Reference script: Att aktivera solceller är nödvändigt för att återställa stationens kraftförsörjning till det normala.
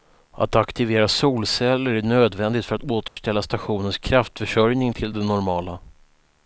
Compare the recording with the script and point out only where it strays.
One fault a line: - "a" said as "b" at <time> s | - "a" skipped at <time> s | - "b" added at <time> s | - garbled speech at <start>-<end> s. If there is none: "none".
none